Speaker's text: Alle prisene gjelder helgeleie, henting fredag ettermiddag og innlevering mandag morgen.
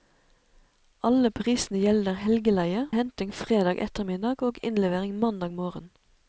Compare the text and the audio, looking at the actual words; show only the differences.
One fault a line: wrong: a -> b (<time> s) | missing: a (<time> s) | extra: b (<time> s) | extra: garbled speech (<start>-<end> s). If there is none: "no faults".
no faults